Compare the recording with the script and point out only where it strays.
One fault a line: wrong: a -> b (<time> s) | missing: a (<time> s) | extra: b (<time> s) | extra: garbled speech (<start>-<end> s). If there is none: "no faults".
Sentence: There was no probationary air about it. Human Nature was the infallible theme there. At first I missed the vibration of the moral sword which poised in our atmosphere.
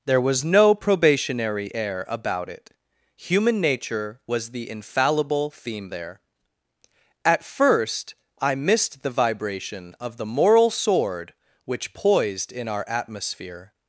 no faults